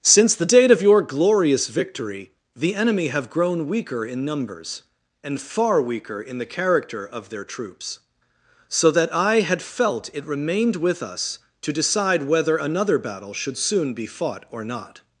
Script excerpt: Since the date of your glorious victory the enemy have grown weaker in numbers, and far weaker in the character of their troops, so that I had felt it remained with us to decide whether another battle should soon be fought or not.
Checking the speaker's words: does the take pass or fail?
pass